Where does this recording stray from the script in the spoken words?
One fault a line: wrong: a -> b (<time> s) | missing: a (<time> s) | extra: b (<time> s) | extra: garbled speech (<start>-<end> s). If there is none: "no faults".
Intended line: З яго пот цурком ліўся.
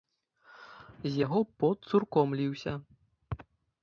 no faults